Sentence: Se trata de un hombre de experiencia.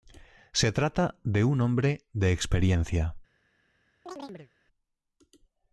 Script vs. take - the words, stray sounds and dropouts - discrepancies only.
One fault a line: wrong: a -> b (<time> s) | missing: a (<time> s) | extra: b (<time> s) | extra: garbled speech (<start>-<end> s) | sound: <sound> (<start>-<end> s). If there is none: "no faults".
sound: chirp (4.1-4.5 s)